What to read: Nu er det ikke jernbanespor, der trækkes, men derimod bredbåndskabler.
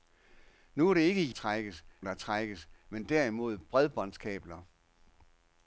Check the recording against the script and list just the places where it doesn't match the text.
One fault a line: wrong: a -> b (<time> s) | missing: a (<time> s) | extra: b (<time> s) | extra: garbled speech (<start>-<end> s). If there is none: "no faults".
wrong: jernbanespor -> trækkes (1.3 s)